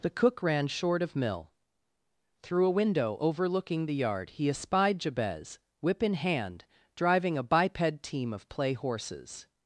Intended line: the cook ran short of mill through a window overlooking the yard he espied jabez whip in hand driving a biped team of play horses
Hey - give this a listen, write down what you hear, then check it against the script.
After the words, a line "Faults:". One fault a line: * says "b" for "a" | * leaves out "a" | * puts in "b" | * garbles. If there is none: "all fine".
the cook ran short of mill through a window overlooking the yard he espied jabez whip in hand driving a biped team of play horses
Faults:
all fine